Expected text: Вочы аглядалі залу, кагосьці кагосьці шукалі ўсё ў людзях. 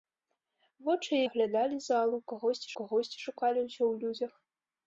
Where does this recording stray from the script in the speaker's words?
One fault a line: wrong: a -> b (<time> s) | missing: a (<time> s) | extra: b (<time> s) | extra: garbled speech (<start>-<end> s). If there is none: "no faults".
no faults